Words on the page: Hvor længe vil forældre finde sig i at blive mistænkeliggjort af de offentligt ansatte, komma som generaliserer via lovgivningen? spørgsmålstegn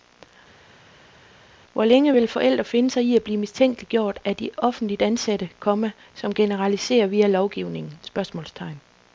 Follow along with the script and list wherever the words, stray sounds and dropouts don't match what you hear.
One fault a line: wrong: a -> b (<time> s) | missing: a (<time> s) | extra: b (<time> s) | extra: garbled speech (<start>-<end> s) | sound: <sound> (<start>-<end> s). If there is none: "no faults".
no faults